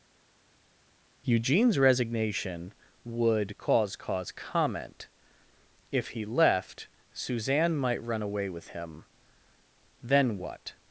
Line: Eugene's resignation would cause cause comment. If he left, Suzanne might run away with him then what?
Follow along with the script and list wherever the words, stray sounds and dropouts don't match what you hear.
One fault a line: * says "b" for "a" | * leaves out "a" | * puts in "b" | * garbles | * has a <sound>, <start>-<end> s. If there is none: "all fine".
all fine